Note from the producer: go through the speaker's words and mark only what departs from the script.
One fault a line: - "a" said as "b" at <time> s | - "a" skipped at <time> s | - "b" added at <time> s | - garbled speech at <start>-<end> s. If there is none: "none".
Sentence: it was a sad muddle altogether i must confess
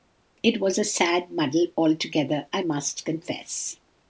none